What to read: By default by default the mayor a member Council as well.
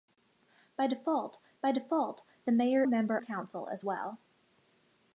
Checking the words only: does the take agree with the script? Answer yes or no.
yes